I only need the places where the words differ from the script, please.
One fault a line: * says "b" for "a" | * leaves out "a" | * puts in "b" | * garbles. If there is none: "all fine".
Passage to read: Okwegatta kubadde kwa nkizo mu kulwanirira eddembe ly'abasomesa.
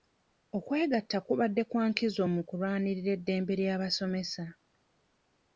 all fine